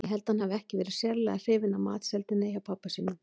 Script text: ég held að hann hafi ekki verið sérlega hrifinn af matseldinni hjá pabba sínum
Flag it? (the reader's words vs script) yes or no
no